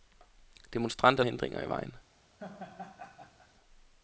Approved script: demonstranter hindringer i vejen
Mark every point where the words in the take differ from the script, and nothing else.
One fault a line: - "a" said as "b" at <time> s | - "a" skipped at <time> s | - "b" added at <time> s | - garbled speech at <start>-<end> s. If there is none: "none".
none